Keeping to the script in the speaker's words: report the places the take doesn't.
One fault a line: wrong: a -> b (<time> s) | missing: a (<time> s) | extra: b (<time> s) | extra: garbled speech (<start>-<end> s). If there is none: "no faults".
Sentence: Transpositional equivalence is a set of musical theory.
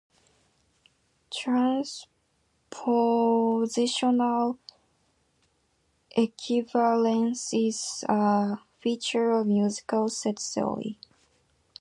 wrong: set -> feature (8.8 s)
extra: set (10.1 s)